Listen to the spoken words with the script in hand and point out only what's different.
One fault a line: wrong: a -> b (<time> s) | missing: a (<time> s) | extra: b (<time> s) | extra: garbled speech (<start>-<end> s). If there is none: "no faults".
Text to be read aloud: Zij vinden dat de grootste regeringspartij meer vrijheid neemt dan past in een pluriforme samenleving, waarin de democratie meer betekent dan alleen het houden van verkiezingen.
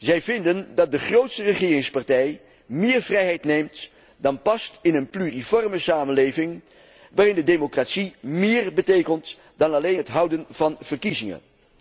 no faults